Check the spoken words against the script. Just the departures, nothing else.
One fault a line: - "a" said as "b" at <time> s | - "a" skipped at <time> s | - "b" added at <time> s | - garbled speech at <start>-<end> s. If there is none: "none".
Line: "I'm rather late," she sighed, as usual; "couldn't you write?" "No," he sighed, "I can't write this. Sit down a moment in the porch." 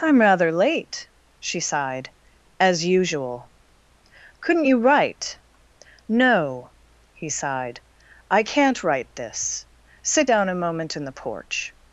none